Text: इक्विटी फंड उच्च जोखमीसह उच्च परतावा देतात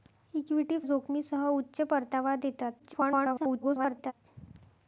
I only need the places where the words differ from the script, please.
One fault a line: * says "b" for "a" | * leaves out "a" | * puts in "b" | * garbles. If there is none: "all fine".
* leaves out "फंड उच्च"
* garbles